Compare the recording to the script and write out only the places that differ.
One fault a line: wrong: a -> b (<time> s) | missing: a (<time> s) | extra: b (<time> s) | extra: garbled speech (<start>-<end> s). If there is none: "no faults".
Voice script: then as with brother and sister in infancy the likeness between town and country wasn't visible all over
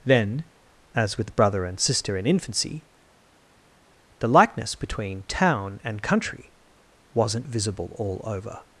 no faults